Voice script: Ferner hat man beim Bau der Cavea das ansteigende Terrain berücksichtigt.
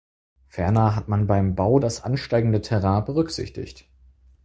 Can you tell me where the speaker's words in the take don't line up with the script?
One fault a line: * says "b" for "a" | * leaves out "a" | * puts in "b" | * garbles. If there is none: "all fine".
* leaves out "der Cavea"